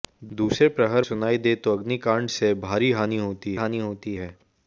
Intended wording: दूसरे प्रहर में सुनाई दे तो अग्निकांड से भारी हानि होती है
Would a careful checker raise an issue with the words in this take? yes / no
yes